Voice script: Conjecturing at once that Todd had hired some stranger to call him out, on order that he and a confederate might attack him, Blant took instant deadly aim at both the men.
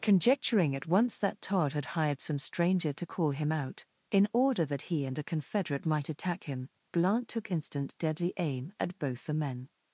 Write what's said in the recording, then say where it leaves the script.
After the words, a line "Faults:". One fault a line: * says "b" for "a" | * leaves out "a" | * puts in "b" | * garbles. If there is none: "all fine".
Conjecturing at once that Todd had hired some stranger to call him out, in order that he and a confederate might attack him, Blant took instant deadly aim at both the men.
Faults:
* says "in" for "on"